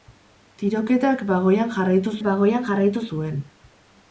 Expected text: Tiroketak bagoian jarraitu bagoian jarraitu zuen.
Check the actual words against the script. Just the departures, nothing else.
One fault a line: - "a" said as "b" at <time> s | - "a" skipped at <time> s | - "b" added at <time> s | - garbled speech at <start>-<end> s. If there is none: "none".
none